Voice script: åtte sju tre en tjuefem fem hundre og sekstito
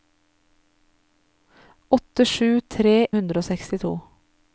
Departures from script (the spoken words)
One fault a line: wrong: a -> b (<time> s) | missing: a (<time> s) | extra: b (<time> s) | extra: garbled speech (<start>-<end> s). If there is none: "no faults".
missing: en tjuefem fem (3.1 s)